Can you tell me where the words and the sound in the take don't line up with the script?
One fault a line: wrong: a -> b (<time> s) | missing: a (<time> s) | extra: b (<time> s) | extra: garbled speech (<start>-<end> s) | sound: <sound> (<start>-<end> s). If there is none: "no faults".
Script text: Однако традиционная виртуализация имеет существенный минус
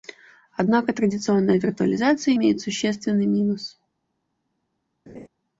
sound: laugh (5.1-5.3 s)